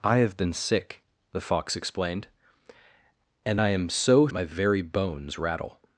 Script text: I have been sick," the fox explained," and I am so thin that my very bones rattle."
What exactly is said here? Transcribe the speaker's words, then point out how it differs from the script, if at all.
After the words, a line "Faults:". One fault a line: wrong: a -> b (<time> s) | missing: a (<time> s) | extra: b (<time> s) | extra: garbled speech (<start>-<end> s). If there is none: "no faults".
I have been sick," the fox explained," and I am so my very bones rattle."
Faults:
missing: thin that (4.3 s)